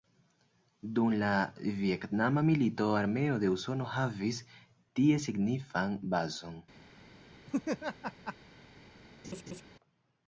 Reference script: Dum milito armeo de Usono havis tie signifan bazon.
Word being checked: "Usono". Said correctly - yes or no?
yes